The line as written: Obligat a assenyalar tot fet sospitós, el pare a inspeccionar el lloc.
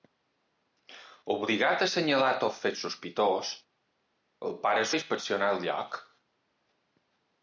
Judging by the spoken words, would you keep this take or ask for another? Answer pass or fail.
pass